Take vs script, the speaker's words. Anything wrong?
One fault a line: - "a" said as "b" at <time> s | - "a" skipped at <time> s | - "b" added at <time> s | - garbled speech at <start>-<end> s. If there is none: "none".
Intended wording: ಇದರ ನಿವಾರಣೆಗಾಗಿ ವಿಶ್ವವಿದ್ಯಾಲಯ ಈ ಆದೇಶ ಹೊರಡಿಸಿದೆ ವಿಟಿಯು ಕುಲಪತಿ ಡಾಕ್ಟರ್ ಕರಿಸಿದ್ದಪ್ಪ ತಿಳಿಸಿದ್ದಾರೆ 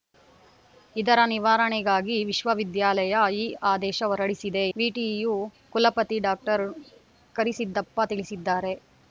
none